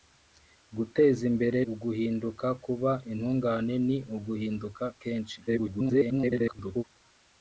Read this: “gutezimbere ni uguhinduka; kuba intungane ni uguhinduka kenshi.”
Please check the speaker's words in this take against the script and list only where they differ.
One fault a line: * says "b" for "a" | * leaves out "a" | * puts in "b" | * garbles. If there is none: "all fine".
* leaves out "ni"
* garbles